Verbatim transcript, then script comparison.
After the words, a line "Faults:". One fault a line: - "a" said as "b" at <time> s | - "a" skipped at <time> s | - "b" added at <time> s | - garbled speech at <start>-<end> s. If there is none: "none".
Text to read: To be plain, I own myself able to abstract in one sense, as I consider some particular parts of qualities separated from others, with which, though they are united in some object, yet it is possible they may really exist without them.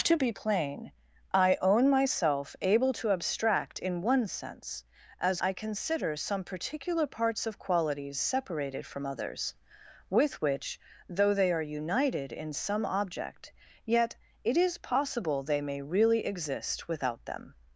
To be plain, I own myself able to abstract in one sense, as I consider some particular parts of qualities separated from others, with which, though they are united in some object, yet it is possible they may really exist without them.
Faults:
none